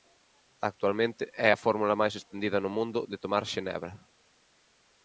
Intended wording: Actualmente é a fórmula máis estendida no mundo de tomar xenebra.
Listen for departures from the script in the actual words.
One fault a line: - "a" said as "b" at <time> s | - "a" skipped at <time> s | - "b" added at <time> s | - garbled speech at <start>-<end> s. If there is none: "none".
none